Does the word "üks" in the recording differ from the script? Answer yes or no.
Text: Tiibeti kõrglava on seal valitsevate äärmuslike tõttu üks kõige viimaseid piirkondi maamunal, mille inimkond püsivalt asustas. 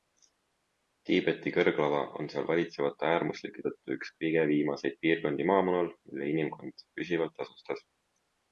no